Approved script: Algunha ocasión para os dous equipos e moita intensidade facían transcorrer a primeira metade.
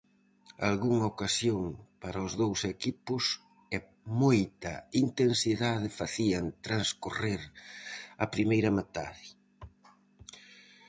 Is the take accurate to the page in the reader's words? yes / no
yes